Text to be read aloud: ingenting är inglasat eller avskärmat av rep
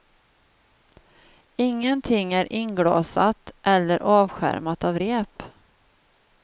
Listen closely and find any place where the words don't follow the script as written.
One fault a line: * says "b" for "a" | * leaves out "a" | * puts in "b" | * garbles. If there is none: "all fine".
all fine